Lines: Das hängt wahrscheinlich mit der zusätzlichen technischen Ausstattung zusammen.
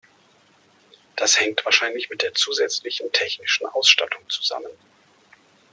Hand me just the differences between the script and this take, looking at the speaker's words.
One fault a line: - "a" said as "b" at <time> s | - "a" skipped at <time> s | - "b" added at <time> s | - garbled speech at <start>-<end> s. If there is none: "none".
none